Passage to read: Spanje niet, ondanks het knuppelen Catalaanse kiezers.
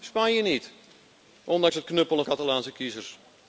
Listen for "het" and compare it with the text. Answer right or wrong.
right